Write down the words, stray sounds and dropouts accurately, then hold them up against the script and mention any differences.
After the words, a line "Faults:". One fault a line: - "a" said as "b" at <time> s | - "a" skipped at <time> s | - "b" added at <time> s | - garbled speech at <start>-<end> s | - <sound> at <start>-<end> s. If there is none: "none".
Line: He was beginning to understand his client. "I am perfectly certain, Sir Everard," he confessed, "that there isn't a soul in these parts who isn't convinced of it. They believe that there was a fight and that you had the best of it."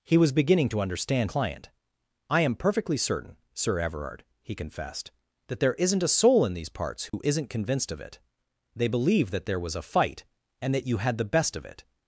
He was beginning to understand client. "I am perfectly certain, Sir Everard," he confessed, "that there isn't a soul in these parts who isn't convinced of it. They believe that there was a fight and that you had the best of it."
Faults:
- "his" skipped at 1.3 s
- dropout at 7.1-7.1 s